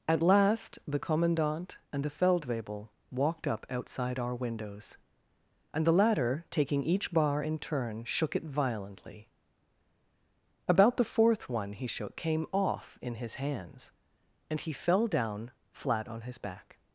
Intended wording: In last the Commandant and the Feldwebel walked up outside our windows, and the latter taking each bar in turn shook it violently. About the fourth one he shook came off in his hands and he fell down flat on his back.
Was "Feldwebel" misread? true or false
false